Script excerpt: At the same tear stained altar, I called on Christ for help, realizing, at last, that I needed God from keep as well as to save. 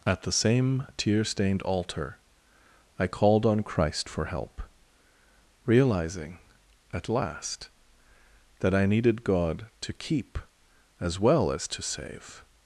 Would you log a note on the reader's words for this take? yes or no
yes